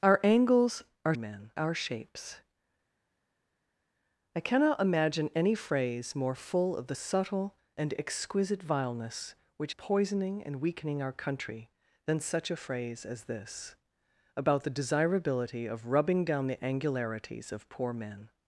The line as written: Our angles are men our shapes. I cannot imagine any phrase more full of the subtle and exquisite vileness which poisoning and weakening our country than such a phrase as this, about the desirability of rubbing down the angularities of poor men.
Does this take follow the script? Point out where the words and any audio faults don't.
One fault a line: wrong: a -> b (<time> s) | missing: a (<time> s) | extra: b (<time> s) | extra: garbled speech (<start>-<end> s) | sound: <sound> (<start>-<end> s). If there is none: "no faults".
no faults